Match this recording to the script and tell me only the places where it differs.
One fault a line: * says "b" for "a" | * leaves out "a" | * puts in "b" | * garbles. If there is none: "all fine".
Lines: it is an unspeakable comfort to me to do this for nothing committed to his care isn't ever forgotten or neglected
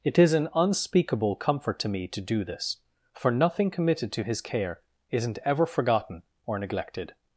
all fine